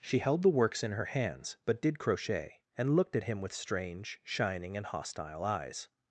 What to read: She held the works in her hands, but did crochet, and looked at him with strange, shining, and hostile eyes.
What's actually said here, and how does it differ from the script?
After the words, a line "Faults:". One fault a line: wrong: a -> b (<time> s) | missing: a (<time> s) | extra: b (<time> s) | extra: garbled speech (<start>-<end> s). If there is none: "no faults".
She held the works in her hands, but did crochet, and looked at him with strange, shining, and hostile eyes.
Faults:
no faults